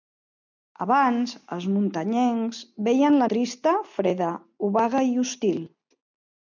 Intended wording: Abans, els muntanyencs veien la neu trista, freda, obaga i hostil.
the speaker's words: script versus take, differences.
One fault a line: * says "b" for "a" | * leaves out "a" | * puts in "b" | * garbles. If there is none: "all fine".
* leaves out "neu"